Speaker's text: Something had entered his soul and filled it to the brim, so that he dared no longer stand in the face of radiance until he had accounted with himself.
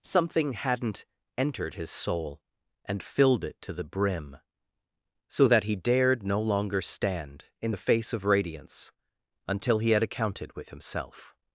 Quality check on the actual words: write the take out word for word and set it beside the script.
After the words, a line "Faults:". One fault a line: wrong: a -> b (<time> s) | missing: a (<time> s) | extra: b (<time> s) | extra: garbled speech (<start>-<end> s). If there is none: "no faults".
Something hadn't entered his soul and filled it to the brim, so that he dared no longer stand in the face of radiance until he had accounted with himself.
Faults:
wrong: had -> hadn't (0.5 s)